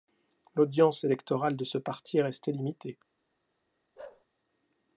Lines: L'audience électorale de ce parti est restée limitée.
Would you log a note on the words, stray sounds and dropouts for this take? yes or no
yes